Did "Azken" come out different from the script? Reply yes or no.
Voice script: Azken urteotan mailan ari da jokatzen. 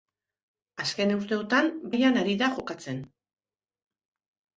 no